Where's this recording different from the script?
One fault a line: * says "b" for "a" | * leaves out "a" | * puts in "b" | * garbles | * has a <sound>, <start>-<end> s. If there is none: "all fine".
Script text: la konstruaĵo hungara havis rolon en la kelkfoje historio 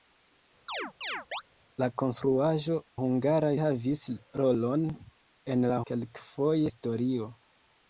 * has a chirp, 0.7-1.4 s